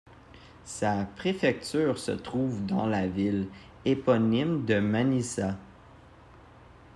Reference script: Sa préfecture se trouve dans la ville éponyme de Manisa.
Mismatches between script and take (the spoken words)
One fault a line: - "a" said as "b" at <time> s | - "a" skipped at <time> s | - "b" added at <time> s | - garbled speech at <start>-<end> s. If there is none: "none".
none